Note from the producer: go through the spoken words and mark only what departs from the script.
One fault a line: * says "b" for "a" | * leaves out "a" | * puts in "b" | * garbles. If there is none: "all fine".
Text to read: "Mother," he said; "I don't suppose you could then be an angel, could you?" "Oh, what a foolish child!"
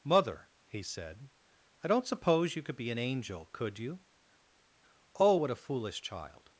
* leaves out "then"